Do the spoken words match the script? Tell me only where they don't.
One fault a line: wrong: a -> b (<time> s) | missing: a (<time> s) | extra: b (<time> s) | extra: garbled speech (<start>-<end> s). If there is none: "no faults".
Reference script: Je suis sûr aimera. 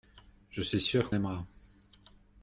no faults